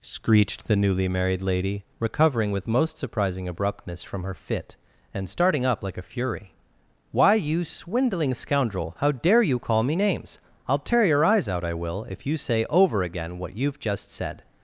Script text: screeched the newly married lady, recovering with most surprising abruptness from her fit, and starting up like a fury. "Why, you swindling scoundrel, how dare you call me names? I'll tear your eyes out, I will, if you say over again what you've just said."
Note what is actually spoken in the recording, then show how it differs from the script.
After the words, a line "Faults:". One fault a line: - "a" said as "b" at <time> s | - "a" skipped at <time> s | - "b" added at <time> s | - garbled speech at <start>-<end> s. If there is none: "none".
screeched the newly married lady, recovering with most surprising abruptness from her fit, and starting up like a fury. "Why, you swindling scoundrel, how dare you call me names? I'll tear your eyes out, I will, if you say over again what you've just said."
Faults:
none